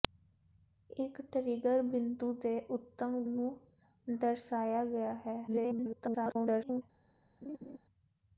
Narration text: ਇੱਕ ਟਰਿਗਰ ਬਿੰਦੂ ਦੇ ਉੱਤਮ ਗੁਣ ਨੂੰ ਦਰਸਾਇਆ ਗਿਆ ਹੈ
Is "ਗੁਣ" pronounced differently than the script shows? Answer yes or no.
yes